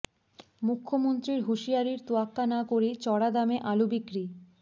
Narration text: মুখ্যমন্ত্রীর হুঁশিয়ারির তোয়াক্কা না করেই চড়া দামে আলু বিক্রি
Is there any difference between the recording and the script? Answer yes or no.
no